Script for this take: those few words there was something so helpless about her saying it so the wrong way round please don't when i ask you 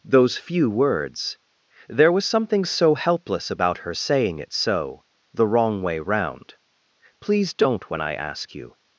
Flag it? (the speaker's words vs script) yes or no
no